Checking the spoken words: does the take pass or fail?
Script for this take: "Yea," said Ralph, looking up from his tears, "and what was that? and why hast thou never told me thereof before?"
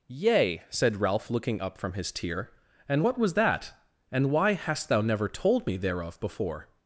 fail